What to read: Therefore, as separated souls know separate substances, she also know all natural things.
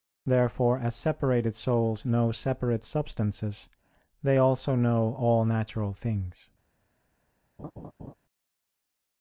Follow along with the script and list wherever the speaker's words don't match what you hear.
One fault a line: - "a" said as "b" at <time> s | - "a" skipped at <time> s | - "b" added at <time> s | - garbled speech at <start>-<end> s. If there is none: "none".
- "she" said as "they" at 4.2 s